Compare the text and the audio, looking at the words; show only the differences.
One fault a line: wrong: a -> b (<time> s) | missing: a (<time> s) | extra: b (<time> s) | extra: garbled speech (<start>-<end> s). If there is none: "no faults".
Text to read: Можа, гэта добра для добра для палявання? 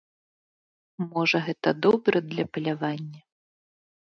missing: добра для (2.5 s)